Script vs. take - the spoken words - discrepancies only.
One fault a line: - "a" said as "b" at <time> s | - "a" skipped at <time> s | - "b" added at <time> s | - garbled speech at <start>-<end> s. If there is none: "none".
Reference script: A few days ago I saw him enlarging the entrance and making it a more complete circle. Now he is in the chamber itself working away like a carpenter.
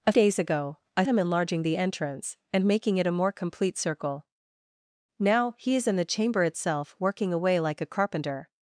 - "few" skipped at 0.1 s
- "saw" skipped at 1.1 s